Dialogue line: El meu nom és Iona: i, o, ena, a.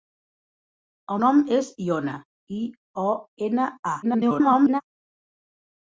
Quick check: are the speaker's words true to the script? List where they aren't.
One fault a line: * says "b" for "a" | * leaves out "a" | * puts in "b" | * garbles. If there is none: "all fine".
* leaves out "meu"
* garbles